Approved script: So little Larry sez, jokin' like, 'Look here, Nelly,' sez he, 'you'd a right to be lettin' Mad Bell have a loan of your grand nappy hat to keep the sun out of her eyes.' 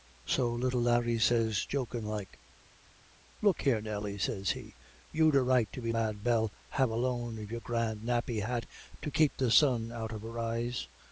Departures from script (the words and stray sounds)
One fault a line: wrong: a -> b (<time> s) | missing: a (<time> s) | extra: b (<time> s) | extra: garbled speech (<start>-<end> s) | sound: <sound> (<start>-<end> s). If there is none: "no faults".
missing: lettin (5.9 s)